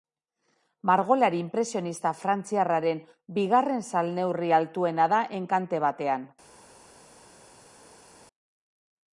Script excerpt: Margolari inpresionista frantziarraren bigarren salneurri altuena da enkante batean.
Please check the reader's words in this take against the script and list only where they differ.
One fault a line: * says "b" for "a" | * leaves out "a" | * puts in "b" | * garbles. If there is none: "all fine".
all fine